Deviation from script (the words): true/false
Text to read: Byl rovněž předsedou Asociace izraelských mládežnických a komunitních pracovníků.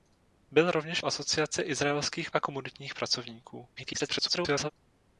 true